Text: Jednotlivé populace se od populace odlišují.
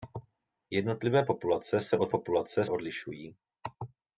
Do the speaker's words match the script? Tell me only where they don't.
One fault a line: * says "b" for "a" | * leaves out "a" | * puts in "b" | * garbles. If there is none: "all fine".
all fine